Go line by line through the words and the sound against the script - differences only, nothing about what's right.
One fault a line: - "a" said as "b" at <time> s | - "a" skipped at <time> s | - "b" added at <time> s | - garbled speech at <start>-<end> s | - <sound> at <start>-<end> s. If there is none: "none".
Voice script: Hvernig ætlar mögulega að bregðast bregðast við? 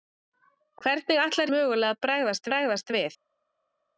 none